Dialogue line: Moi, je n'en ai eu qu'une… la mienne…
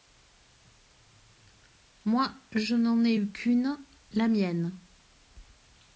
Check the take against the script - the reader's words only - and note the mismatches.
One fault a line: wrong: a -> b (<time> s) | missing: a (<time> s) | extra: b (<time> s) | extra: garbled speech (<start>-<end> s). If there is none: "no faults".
no faults